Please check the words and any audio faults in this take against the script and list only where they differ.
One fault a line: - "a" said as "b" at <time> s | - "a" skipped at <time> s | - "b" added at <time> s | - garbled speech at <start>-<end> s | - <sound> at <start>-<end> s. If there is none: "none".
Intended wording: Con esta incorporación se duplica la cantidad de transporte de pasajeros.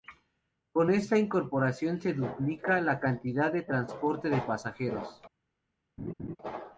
- laugh at 6.0-6.4 s